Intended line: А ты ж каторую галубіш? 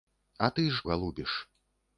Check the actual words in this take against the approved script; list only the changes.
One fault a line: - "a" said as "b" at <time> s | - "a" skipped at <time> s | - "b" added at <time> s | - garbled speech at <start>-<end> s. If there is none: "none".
- "каторую" skipped at 0.8 s